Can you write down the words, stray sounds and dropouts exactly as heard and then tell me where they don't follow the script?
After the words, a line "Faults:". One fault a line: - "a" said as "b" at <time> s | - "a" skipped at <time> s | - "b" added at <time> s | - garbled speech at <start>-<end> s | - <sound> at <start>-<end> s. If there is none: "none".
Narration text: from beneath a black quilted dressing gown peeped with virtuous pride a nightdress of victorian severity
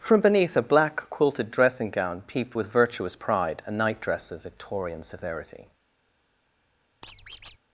from beneath a black quilted dressing gown peeped with virtuous pride a nightdress of victorian severity
Faults:
- squeak at 7.0-7.6 s